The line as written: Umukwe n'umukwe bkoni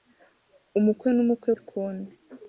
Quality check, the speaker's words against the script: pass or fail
pass